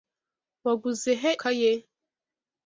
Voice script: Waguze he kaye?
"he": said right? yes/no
yes